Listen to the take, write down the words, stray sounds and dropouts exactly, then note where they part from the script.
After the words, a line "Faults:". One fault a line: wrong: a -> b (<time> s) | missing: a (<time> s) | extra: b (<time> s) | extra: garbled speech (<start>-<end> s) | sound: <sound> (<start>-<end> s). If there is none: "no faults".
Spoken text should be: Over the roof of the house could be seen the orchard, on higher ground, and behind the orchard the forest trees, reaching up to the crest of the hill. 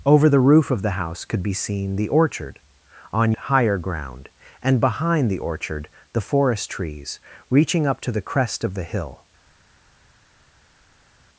Over the roof of the house could be seen the orchard, on higher ground, and behind the orchard the forest trees, reaching up to the crest of the hill.
Faults:
no faults